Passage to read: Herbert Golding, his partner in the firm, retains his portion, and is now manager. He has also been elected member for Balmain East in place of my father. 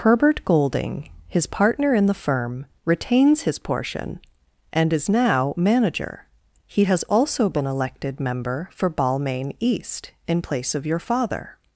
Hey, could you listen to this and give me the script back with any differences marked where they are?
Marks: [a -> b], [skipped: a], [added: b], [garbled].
Herbert Golding, his partner in the firm, retains his portion, and is now manager. He has also been elected member for Balmain East in place of [my -> your] father.